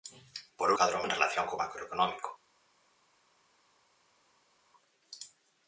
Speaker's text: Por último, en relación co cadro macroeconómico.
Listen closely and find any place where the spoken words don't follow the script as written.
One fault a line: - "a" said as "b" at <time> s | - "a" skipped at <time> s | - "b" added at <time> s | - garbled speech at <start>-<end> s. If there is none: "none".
- "último" said as "cadro" at 0.8 s
- "cadro" skipped at 1.6 s